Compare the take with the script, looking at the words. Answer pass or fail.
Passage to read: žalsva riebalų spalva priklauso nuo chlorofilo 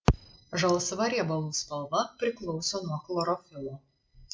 pass